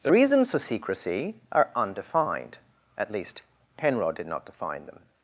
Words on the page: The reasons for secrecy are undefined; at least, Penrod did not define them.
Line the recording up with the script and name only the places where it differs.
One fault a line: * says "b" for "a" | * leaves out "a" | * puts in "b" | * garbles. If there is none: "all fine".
all fine